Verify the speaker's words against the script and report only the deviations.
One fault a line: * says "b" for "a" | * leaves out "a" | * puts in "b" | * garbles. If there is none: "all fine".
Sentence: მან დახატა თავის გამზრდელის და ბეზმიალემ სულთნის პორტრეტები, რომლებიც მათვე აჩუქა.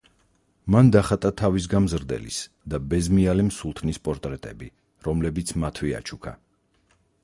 all fine